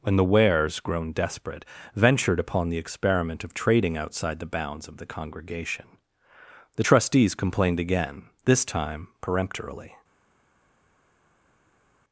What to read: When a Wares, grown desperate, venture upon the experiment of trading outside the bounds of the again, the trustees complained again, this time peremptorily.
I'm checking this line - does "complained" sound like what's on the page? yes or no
yes